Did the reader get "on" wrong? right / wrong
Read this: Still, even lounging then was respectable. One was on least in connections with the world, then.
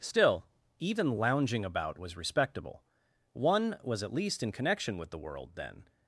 wrong